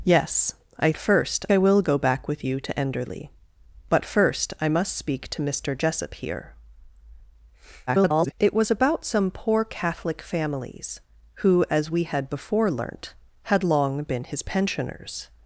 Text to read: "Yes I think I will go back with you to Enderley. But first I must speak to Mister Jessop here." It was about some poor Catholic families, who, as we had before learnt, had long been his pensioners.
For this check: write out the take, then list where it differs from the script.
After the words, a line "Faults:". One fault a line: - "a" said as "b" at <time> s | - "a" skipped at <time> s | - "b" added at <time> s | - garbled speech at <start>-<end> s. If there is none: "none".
"Yes I first I will go back with you to Enderley. But first I must speak to Mister Jessop here." [garbled] It was about some poor Catholic families, who, as we had before learnt, had long been his pensioners.
Faults:
- "think" said as "first" at 1.0 s
- garbled speech at 7.9-8.3 s